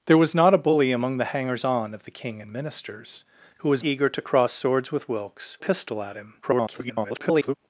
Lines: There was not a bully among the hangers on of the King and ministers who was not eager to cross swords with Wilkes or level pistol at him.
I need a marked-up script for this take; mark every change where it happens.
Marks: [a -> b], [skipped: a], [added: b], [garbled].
There was not a bully among the hangers on of the King and ministers who was [skipped: not] eager to cross swords with Wilkes [skipped: or level] pistol at him. [garbled]